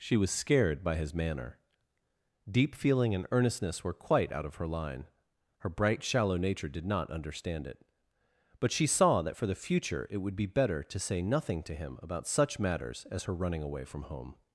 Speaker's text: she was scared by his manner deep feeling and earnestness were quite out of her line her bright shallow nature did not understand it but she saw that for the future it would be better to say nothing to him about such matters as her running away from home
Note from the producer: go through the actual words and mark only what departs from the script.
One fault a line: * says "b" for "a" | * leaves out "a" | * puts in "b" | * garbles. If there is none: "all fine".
all fine